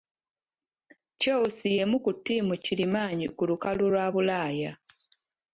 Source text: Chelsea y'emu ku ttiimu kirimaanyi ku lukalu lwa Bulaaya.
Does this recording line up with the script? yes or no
yes